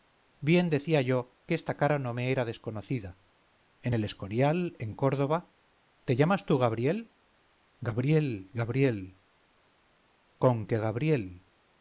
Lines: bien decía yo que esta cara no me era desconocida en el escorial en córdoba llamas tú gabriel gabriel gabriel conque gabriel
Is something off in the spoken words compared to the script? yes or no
yes